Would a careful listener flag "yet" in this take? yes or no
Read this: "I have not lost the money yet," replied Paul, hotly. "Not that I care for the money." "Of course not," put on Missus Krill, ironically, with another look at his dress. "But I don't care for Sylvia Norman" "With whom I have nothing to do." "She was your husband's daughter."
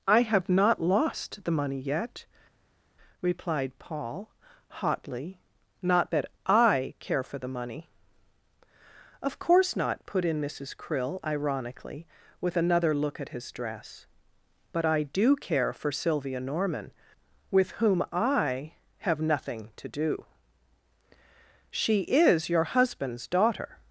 no